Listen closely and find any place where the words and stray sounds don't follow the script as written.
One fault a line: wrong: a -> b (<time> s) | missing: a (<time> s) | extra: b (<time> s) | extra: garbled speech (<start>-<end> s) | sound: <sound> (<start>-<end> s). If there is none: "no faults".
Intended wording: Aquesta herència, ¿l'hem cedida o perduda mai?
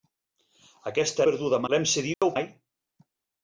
wrong: herència -> perduda (1.3 s)
sound: dropout (2.1-2.2 s)
missing: perduda (2.4 s)